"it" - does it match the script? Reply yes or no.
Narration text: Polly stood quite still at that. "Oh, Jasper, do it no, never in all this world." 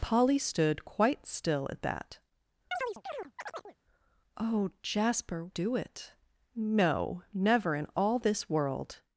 yes